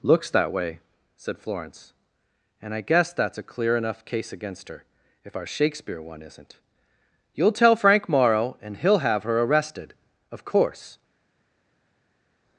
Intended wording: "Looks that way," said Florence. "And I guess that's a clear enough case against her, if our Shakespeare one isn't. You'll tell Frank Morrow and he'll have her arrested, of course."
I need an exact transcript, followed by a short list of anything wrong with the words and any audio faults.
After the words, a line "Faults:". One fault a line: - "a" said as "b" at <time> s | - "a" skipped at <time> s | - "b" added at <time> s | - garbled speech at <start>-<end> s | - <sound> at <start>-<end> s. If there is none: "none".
"Looks that way," said Florence. "And I guess that's a clear enough case against her, if our Shakespeare one isn't. You'll tell Frank Morrow and he'll have her arrested, of course."
Faults:
none